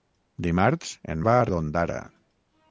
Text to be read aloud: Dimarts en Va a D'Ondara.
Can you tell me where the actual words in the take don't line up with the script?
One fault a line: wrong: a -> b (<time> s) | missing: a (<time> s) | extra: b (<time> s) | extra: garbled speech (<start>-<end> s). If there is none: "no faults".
no faults